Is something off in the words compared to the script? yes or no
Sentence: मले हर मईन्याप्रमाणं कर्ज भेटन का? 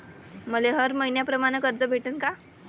no